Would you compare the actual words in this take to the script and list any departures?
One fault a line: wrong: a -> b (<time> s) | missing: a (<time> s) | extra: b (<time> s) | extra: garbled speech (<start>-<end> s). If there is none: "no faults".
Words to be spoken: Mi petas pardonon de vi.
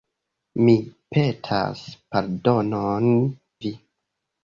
missing: de (3.1 s)